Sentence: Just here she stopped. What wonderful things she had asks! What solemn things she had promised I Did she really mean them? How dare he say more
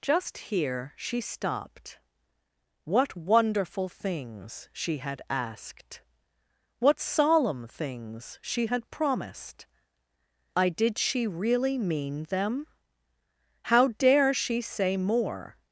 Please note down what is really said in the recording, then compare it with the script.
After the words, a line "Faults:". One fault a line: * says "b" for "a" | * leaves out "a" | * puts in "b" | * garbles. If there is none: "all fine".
Just here she stopped. What wonderful things she had asked! What solemn things she had promised I Did she really mean them? How dare she say more
Faults:
* says "asked" for "asks"
* says "she" for "he"